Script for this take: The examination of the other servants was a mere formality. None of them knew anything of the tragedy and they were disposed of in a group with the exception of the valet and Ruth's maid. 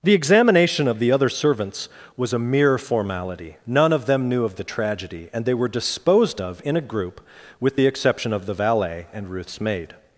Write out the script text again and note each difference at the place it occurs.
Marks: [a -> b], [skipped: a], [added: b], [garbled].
The examination of the other servants was a mere formality. None of them knew [skipped: anything] of the tragedy and they were disposed of in a group with the exception of the valet and Ruth's maid.